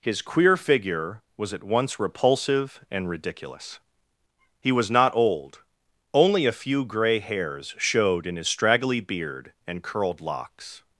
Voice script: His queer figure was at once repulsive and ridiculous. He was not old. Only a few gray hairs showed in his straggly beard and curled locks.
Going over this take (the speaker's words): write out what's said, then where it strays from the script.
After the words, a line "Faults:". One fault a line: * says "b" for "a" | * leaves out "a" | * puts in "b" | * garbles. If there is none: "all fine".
His queer figure was at once repulsive and ridiculous. He was not old. Only a few gray hairs showed in his straggly beard and curled locks.
Faults:
all fine